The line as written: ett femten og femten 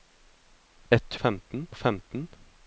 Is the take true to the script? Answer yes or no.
yes